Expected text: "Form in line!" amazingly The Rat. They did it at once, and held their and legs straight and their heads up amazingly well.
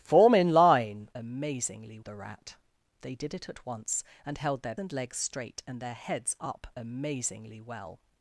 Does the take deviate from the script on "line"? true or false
false